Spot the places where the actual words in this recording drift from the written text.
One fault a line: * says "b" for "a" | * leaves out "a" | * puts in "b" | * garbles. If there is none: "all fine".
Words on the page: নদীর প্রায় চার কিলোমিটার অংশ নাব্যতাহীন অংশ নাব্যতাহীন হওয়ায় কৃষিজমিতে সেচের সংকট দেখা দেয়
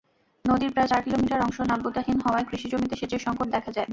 * leaves out "অংশ নাব্যতাহীন"